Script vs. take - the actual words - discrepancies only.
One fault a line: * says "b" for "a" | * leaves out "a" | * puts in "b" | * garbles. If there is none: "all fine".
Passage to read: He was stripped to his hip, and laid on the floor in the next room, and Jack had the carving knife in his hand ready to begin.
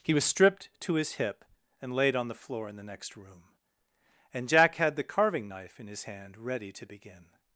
all fine